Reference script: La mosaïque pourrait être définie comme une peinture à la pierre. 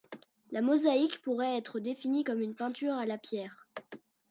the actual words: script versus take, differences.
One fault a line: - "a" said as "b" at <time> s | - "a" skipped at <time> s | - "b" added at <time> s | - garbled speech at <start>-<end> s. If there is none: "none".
none